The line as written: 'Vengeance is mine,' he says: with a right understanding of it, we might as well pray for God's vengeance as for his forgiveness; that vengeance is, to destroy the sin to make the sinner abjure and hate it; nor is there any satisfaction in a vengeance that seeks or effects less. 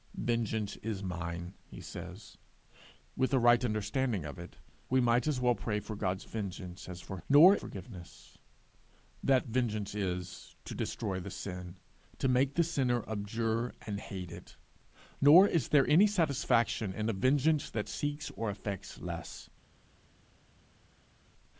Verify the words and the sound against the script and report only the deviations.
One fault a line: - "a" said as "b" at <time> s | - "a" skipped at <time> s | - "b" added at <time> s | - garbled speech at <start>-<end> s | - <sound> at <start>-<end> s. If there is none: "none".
- "his" said as "nor" at 7.3 s